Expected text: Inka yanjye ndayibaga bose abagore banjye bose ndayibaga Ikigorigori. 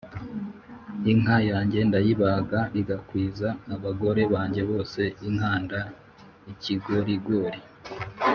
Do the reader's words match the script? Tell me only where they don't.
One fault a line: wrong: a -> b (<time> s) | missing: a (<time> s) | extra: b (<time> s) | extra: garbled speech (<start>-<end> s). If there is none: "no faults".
wrong: bose -> igakwiza (2.8 s)
wrong: ndayibaga -> inkanda (5.3 s)